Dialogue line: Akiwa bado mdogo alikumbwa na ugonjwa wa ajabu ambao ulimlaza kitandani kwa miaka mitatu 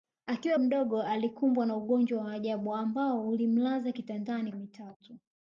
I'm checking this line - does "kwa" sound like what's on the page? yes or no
no